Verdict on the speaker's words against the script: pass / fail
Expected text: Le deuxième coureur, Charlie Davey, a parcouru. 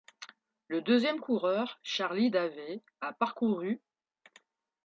pass